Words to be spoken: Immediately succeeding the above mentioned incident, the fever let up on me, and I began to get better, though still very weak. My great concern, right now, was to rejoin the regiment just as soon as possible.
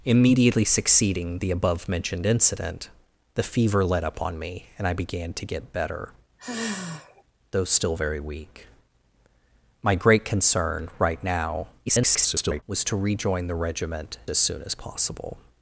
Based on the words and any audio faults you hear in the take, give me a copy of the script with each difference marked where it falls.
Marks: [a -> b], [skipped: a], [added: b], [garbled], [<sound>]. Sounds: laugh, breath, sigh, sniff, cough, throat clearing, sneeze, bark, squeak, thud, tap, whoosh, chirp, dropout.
Immediately succeeding the above mentioned incident, the fever let up on me, and I began to get better, [sigh] though still very weak. My great concern, right now, [garbled] was to rejoin the regiment [skipped: just] as soon as possible.